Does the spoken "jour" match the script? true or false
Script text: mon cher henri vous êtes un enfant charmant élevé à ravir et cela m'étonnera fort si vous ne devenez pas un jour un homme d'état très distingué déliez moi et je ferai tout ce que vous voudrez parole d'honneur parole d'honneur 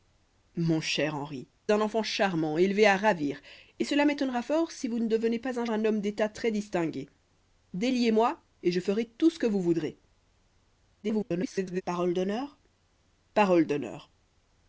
false